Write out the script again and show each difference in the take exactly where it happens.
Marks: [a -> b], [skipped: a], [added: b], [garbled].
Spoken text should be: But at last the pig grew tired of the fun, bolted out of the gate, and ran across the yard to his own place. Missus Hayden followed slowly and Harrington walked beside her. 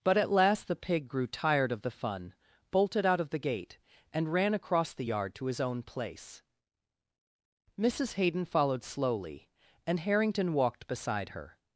But at last the pig grew tired of the fun, bolted out of the gate, and ran across the yard to his own place. Missus Hayden followed slowly and Harrington walked beside her.